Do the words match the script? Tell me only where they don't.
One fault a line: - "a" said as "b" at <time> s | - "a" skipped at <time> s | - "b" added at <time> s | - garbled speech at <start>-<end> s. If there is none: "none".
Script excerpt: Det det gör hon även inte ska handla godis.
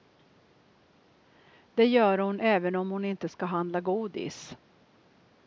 - "det" skipped at 1.9 s
- "om hon" added at 2.7 s